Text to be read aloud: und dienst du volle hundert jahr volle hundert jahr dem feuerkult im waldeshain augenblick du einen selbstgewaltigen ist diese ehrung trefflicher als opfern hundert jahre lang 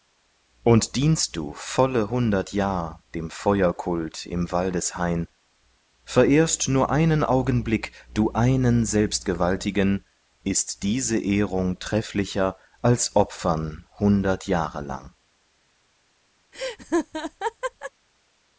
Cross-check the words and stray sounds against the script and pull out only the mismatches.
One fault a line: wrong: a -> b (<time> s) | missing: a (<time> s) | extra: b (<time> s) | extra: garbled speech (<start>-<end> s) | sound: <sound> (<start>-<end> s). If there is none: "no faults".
missing: volle hundert jahr (3.0 s)
extra: verehrst nur einen (6.0 s)
sound: laugh (16.5-17.9 s)